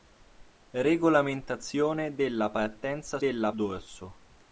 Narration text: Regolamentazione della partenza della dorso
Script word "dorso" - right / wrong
right